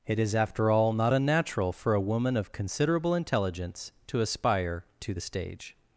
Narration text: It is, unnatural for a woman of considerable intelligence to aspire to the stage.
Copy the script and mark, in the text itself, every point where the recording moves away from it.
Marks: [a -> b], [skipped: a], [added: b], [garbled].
It is, [added: after all not] unnatural for a woman of considerable intelligence to aspire to the stage.